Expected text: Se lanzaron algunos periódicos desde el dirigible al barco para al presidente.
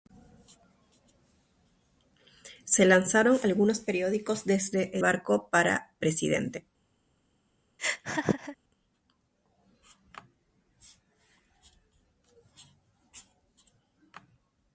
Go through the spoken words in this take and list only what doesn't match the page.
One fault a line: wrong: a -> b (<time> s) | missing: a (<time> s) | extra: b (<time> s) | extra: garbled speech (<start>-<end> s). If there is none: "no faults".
missing: el dirigible al (5.0 s)
missing: al (6.0 s)